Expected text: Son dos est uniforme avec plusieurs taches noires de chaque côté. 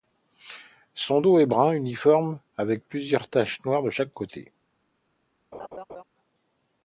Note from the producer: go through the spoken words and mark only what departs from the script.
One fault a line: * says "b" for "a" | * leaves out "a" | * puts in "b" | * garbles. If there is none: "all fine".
* puts in "brun"